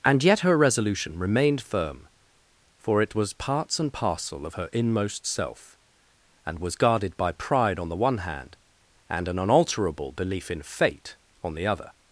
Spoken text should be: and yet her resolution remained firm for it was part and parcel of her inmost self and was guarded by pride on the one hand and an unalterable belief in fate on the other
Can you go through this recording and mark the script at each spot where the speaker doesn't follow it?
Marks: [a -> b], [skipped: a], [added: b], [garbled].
and yet her resolution remained firm for it was [part -> parts] and parcel of her inmost self and was guarded by pride on the one hand and an unalterable belief in fate on the other